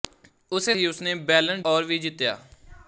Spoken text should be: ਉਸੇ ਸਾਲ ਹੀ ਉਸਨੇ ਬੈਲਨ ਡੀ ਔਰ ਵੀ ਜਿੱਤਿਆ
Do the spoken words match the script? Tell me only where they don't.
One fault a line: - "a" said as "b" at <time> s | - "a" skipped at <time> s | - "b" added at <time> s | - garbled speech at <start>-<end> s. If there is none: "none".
- "ਸਾਲ" skipped at 0.8 s
- "ਡੀ" skipped at 1.6 s